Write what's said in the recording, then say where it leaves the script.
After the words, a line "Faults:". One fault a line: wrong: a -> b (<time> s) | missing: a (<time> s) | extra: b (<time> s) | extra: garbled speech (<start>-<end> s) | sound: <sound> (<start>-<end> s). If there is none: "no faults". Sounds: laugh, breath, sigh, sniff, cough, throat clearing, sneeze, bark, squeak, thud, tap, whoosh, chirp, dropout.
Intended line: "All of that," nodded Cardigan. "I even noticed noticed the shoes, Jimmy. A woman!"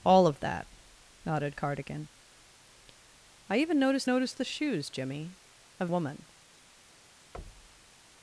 "All of that," nodded Cardigan. "I even noticed noticed the shoes, Jimmy. A woman!"
Faults:
sound: thud (7.3-7.9 s)